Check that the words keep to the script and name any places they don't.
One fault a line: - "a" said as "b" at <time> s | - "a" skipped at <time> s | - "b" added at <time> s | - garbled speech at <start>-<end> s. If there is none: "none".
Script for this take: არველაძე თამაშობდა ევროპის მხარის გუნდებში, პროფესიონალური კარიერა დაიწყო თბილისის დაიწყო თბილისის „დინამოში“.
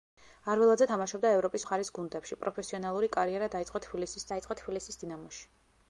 none